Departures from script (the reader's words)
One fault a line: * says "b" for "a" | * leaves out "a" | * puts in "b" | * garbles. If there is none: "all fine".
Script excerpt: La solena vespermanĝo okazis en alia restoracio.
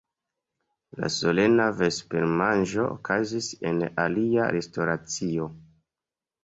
all fine